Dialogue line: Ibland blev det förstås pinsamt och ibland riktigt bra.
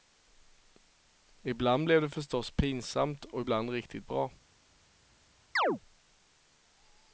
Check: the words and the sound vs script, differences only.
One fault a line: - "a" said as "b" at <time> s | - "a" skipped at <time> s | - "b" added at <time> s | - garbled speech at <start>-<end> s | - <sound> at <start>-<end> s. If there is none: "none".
- chirp at 5.6-5.8 s